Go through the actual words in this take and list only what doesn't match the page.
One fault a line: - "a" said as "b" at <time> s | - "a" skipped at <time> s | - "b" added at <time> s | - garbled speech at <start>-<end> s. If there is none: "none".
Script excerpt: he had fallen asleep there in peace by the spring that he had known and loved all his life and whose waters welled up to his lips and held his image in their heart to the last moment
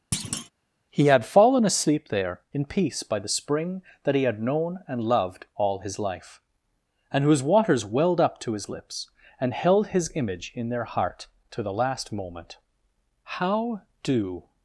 - "how do" added at 13.2 s